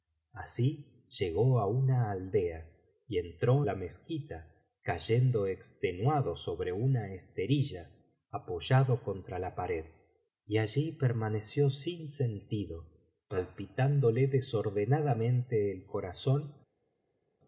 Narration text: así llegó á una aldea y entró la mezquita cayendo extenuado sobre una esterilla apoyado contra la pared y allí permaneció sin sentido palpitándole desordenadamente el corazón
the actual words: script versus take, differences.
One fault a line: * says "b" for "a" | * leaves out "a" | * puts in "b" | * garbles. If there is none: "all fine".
all fine